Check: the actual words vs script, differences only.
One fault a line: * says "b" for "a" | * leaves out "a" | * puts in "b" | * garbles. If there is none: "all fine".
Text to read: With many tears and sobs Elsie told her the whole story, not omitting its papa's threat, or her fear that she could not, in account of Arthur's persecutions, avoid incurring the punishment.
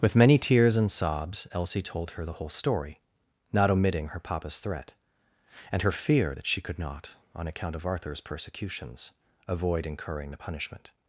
* says "her" for "its"
* says "and" for "or"
* says "on" for "in"